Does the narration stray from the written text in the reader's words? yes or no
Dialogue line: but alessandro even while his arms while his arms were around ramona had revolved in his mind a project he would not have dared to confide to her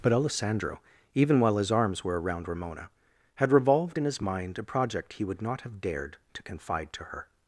yes